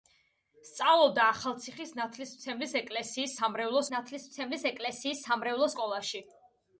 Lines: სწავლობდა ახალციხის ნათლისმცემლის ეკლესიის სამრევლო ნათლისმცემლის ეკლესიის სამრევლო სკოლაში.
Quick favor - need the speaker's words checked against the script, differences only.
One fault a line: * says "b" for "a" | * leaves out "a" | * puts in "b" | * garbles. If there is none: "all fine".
all fine